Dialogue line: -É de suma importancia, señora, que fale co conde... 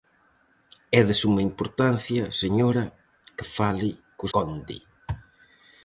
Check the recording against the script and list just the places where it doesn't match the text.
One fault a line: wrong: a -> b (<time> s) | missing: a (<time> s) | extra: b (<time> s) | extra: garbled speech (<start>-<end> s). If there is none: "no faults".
no faults